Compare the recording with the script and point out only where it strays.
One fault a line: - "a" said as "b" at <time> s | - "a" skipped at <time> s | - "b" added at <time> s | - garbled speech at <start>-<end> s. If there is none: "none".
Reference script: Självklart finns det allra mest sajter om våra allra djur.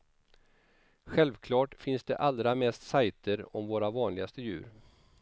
- "allra" said as "vanligaste" at 3.9 s